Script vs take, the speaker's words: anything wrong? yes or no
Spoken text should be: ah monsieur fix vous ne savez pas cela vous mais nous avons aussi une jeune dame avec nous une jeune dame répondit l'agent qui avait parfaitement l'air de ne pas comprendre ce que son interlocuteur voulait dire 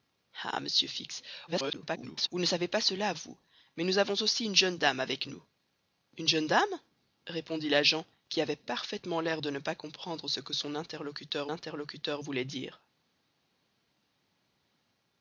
yes